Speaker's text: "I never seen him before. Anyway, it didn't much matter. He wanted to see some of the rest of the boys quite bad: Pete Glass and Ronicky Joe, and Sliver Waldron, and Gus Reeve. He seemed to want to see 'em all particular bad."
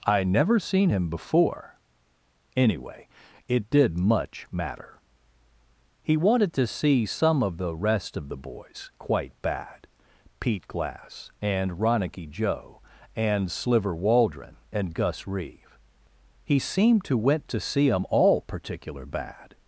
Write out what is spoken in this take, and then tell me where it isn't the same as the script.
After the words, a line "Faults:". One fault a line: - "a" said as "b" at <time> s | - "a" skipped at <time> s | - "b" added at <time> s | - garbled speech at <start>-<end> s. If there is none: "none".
"I never seen him before. Anyway, it did much matter. He wanted to see some of the rest of the boys quite bad: Pete Glass and Ronicky Joe, and Sliver Waldron, and Gus Reeve. He seemed to went to see 'em all particular bad."
Faults:
- "didn't" said as "did" at 3.7 s
- "want" said as "went" at 17.2 s